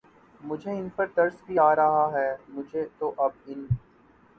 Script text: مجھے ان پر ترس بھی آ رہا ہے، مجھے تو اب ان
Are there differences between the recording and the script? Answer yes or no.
no